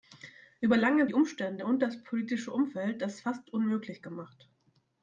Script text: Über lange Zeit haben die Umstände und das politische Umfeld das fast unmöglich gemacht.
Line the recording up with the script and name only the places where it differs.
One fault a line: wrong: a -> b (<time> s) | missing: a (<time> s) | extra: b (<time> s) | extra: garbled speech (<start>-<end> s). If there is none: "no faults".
missing: Zeit haben (1.1 s)